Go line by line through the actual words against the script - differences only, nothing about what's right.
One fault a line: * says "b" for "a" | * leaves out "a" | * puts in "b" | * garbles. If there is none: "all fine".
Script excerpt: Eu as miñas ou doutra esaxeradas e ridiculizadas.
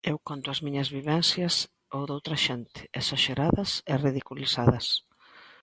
* puts in "conto"
* puts in "vivencias"
* puts in "xente"